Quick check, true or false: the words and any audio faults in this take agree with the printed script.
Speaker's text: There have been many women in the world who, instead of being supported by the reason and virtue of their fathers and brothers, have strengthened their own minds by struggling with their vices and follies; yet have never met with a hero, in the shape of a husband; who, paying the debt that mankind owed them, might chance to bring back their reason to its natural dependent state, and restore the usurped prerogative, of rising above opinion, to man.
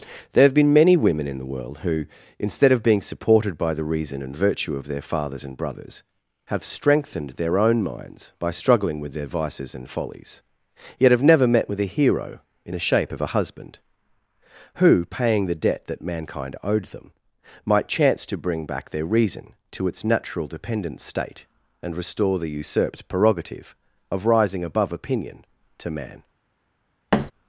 false